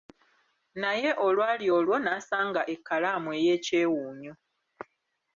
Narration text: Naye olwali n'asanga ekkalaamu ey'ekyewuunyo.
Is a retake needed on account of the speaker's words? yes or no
yes